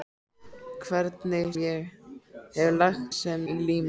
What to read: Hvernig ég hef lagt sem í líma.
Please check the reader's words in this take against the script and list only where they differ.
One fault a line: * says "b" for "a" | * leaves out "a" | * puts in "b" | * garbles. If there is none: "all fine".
all fine